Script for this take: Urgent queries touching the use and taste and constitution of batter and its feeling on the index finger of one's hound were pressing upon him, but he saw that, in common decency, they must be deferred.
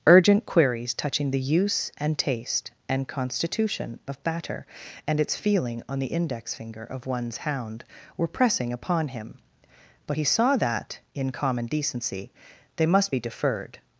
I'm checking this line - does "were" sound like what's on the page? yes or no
yes